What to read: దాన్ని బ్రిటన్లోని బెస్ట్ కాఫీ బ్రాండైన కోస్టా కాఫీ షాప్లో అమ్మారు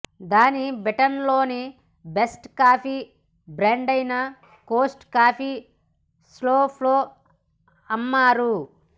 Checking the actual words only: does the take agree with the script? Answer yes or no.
yes